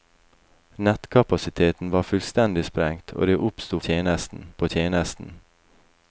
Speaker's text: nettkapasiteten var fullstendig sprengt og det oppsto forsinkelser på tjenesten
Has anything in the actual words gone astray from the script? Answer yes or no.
yes